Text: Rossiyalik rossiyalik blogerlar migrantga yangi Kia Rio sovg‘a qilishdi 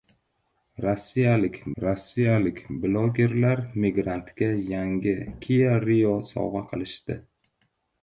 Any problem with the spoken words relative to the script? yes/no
no